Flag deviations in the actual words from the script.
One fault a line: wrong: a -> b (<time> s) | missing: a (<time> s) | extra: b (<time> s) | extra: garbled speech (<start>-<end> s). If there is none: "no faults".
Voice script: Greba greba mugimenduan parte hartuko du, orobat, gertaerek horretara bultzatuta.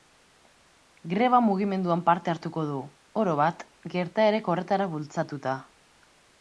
missing: greba (1.4 s)